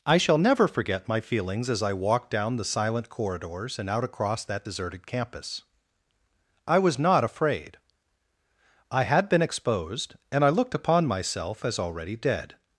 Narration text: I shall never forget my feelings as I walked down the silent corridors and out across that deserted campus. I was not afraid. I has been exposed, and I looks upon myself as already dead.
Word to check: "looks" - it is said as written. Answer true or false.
false